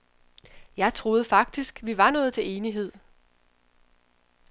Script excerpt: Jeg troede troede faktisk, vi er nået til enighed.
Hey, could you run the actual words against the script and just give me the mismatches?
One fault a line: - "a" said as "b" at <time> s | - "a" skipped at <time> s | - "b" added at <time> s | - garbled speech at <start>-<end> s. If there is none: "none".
- "troede" skipped at 1.2 s
- "er" said as "var" at 2.0 s